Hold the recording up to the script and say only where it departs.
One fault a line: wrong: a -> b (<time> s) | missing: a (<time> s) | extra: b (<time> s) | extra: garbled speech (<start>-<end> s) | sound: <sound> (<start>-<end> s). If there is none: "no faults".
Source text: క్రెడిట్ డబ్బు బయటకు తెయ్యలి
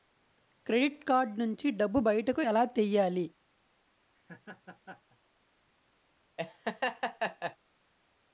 extra: కార్డ్ నుంచి (1.0 s)
extra: ఎలా (2.4 s)
sound: laugh (4.1-5.2 s)
sound: laugh (6.4-7.6 s)